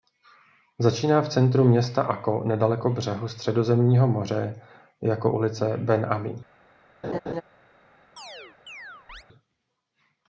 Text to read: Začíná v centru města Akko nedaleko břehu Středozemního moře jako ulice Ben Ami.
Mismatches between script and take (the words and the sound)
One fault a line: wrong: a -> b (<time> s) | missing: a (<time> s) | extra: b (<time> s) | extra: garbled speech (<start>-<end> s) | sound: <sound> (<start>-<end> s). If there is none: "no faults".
sound: laugh (7.0-7.4 s)
sound: chirp (8.2-9.2 s)